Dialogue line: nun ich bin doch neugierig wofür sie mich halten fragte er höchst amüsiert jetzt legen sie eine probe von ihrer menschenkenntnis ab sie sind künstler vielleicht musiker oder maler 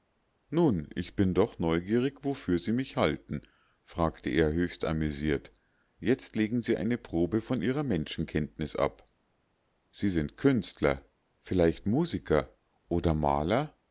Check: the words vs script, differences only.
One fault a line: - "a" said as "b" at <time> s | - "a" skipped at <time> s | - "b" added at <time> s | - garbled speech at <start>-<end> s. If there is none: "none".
none